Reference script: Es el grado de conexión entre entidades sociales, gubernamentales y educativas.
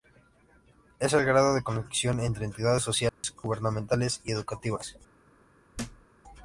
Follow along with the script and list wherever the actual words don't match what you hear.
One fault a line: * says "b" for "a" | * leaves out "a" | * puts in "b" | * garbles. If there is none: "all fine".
all fine